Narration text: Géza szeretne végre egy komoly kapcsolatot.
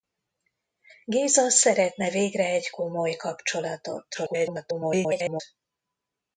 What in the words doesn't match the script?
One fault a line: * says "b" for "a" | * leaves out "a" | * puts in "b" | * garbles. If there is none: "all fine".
* garbles